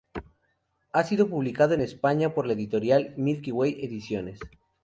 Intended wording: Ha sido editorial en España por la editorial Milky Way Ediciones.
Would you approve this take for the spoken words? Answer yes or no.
no